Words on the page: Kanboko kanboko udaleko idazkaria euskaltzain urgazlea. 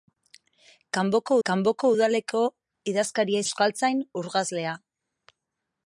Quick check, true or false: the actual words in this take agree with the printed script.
true